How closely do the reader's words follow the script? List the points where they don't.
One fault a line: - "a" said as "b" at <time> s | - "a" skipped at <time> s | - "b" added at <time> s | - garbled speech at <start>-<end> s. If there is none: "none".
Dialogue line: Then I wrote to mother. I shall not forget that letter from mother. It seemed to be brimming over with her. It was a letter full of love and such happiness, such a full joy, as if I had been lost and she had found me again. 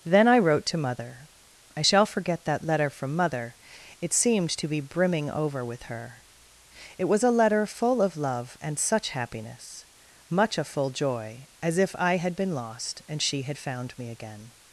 - "not" skipped at 2.0 s
- "such" said as "much" at 10.3 s